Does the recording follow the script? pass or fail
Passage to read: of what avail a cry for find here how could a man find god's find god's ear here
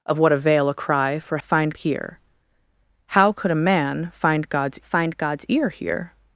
pass